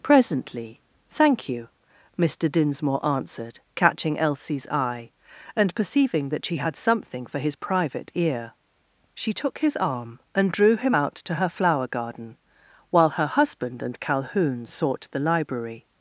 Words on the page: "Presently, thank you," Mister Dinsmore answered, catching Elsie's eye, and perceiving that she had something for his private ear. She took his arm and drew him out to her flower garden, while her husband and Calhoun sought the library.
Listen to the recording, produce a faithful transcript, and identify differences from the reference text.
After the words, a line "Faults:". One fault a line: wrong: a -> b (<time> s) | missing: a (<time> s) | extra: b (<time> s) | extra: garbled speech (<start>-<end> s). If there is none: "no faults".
"Presently, thank you," Mister Dinsmore answered, catching Elsie's eye, and perceiving that she had something for his private ear. She took his arm and drew him out to her flower garden, while her husband and Calhoun sought the library.
Faults:
no faults